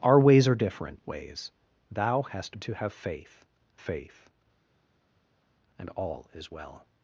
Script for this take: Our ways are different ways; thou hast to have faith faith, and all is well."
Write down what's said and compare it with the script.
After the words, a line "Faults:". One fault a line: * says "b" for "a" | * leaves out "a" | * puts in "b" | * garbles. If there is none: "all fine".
Our ways are different ways; thou hast to have faith faith, and all is well."
Faults:
all fine